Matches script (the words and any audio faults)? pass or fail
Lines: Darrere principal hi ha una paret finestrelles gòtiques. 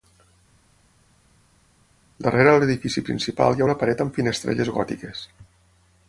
fail